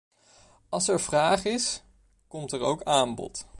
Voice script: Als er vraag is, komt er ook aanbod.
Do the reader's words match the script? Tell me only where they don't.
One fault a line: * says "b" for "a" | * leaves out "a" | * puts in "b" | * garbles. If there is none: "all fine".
all fine